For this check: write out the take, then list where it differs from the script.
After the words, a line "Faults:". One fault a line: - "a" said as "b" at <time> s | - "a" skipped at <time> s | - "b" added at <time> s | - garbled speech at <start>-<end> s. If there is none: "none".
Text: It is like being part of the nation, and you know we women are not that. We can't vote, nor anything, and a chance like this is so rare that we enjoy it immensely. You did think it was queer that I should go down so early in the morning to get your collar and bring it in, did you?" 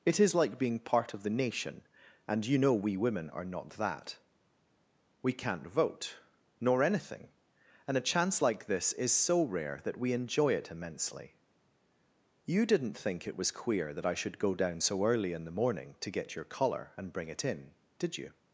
It is like being part of the nation, and you know we women are not that. We can't vote, nor anything, and a chance like this is so rare that we enjoy it immensely. You didn't think it was queer that I should go down so early in the morning to get your collar and bring it in, did you?"
Faults:
- "did" said as "didn't" at 12.6 s